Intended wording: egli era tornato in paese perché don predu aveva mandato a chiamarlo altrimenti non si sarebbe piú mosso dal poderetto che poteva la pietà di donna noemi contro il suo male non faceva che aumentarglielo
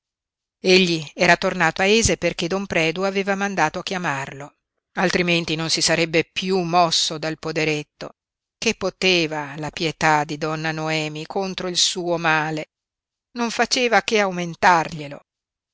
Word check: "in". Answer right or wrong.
wrong